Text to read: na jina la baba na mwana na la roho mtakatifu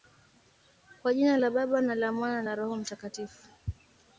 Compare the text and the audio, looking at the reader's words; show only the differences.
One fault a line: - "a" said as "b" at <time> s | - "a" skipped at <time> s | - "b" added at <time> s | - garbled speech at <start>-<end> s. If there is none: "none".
- "na" said as "kwa" at 1.0 s
- "la" added at 1.9 s